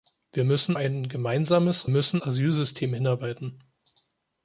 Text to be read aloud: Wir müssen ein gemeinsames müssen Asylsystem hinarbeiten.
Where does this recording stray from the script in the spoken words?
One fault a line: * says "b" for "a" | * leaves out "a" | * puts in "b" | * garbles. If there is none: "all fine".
all fine